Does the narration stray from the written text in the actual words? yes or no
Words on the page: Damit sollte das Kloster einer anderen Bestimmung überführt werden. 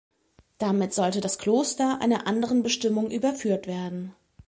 no